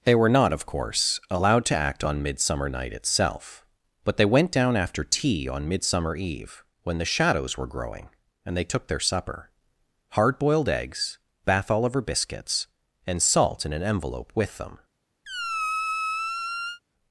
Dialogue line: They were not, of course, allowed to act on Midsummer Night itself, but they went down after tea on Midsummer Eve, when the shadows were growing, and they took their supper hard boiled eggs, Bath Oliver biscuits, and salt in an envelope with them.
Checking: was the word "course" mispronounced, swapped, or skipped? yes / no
no